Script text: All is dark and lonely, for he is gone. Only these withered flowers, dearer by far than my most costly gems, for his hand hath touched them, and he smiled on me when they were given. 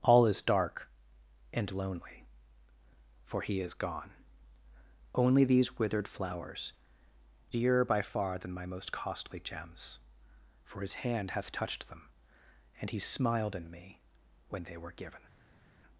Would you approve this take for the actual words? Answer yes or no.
no